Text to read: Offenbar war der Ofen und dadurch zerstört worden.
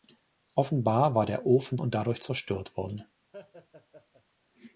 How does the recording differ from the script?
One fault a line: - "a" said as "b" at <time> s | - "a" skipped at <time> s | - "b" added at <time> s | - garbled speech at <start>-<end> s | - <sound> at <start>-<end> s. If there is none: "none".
- laugh at 3.3-4.2 s